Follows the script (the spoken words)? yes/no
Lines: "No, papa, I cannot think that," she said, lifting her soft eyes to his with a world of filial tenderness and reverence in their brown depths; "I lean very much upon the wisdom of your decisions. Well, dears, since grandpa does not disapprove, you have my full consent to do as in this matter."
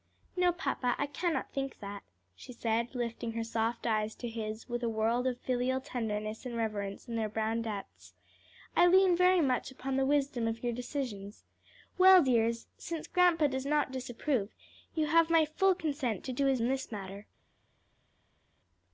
yes